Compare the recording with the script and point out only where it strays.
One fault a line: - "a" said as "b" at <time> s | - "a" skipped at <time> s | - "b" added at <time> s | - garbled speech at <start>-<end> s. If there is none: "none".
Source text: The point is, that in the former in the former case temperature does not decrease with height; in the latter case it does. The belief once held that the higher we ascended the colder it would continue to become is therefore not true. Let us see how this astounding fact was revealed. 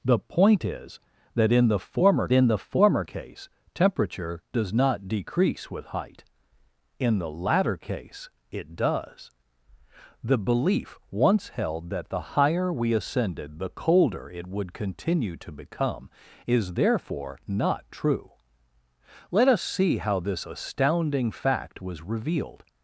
none